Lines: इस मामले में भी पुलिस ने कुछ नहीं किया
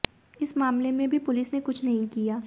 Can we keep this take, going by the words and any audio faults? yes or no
yes